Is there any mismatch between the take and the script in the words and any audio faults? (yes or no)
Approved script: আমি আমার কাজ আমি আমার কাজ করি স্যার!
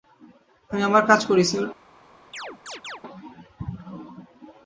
yes